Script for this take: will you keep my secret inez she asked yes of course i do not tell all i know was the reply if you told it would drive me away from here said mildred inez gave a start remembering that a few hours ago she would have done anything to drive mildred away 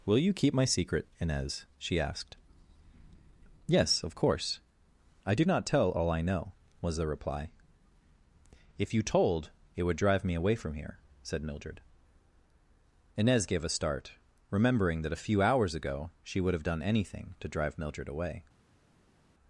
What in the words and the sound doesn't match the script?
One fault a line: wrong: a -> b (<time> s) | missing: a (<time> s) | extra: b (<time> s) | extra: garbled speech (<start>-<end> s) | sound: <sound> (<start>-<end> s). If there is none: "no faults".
no faults